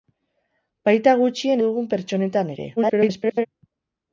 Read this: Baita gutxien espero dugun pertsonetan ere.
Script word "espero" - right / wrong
wrong